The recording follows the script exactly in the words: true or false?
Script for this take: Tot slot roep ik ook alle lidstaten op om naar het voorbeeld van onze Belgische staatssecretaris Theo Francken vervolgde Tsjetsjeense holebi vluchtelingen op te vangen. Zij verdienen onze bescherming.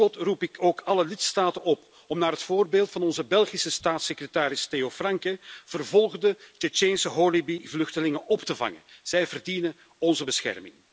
true